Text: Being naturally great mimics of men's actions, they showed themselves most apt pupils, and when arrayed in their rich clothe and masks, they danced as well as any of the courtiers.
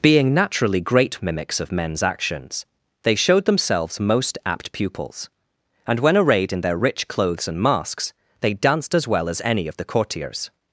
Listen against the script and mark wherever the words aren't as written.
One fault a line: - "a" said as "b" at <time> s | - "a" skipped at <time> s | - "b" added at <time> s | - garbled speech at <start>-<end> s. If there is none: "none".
- "clothe" said as "clothes" at 7.1 s